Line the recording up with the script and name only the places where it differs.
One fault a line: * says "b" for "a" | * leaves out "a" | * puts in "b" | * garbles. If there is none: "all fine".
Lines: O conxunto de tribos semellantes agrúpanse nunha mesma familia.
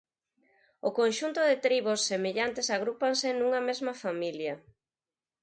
all fine